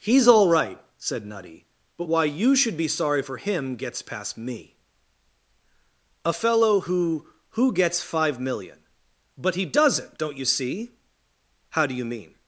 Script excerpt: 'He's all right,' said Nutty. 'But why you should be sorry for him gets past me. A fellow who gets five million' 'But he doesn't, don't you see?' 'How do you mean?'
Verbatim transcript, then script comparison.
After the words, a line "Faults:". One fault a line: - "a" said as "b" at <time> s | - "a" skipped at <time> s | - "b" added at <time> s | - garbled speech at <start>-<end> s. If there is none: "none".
'He's all right,' said Nutty. 'But why you should be sorry for him gets past me. A fellow who who gets five million' 'But he doesn't, don't you see?' 'How do you mean?'
Faults:
- "who" added at 7.5 s